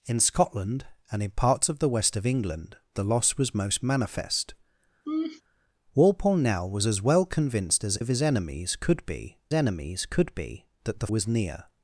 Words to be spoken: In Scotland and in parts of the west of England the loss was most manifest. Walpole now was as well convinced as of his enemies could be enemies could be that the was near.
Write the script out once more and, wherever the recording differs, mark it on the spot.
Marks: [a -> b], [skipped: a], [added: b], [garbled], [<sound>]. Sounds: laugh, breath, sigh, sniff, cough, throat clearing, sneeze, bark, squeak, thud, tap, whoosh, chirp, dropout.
In Scotland and in parts of the west of England the loss was most manifest. [laugh] Walpole now was as well convinced as of his enemies could be enemies could be that the was near.